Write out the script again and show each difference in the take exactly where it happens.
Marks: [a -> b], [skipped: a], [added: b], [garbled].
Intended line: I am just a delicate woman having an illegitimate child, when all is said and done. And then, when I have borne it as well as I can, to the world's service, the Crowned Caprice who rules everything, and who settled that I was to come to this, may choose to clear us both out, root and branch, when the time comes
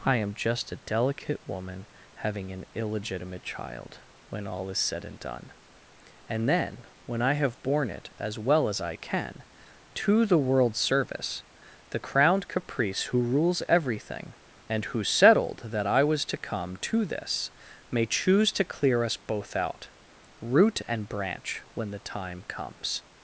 I am just a delicate woman having an illegitimate child, when all is said and done. And then, when I have borne it as well as I can, to the world's service, the Crowned Caprice who rules everything, and who settled that I was to come to this, may choose to clear us both out, root and branch, when the time comes